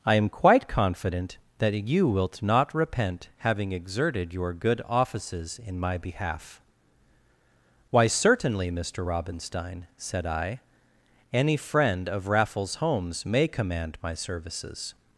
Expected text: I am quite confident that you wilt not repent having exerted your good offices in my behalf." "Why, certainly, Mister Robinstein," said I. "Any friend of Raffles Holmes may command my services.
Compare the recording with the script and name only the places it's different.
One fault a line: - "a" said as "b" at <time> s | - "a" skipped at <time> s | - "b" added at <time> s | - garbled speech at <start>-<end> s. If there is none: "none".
none